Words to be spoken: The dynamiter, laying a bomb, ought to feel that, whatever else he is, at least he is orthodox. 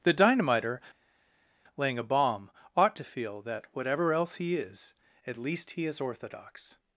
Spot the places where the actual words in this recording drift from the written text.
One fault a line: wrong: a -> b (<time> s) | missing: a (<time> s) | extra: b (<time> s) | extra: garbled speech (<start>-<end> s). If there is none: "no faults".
no faults